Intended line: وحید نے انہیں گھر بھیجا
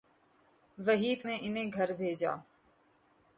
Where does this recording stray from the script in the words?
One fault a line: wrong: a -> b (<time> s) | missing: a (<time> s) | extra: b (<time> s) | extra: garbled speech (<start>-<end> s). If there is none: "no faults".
no faults